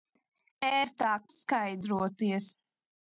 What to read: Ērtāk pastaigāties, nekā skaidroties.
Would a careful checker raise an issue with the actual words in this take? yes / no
yes